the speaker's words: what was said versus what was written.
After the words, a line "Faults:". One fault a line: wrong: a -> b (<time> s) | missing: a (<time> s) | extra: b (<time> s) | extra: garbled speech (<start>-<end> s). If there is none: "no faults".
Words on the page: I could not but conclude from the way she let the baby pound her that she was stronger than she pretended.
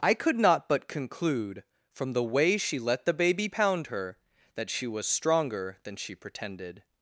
I could not but conclude from the way she let the baby pound her that she was stronger than she pretended.
Faults:
no faults